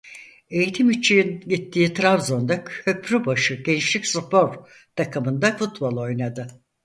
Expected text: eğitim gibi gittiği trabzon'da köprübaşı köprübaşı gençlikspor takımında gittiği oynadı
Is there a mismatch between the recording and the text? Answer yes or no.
yes